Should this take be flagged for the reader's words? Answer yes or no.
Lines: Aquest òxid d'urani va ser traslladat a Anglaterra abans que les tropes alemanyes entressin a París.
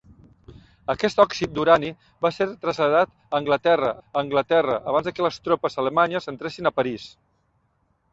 yes